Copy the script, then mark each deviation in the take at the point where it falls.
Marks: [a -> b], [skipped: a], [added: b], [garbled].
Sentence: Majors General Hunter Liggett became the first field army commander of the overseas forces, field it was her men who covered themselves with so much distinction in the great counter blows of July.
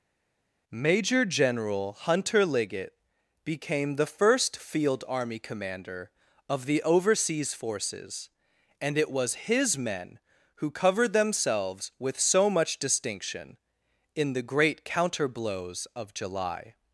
[Majors -> Major] General Hunter Liggett became the first field army commander of the overseas forces, [field -> and] it was [her -> his] men who covered themselves with so much distinction in the great counter blows of July.